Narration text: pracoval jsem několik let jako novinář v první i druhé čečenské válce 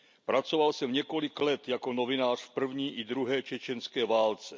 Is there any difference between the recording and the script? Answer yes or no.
no